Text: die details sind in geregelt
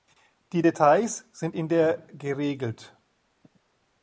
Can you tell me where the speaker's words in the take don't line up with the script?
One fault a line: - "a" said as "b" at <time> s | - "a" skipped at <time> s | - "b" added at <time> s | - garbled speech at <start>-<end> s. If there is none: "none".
- "der" added at 1.7 s